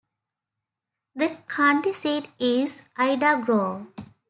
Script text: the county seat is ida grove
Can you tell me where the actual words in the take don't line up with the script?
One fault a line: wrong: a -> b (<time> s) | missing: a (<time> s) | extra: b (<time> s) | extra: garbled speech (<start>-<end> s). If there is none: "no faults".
no faults